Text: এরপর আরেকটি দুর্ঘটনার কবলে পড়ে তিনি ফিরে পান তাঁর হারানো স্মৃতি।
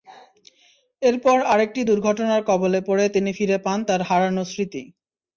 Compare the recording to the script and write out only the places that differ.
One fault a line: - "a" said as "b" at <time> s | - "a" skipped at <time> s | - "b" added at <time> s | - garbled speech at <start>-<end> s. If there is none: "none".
none